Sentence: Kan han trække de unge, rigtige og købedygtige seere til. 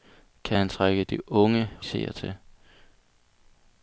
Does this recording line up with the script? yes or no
no